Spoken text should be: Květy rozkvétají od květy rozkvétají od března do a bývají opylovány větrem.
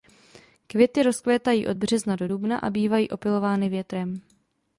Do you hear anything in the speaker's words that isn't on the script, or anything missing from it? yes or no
yes